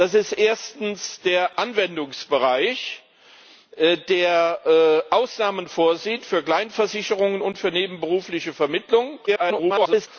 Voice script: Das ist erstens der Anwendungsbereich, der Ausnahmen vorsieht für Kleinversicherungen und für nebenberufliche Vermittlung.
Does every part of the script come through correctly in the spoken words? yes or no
no